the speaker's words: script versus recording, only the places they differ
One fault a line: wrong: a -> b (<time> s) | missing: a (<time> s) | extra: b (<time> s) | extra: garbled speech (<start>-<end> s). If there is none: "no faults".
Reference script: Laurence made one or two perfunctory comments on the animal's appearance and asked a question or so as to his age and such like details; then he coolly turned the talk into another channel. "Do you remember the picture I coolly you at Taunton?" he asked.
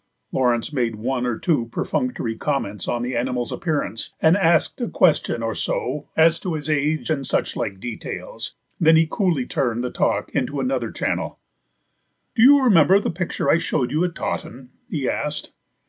wrong: coolly -> showed (13.6 s)